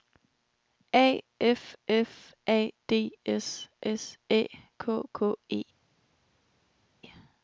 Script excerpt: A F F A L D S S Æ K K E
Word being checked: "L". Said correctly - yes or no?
no